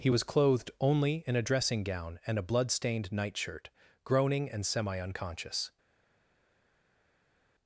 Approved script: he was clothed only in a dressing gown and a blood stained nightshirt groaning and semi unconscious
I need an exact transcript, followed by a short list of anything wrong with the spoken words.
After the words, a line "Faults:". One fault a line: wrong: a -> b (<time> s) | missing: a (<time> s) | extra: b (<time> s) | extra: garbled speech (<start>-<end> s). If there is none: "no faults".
he was clothed only in a dressing gown and a blood stained nightshirt groaning and semi unconscious
Faults:
no faults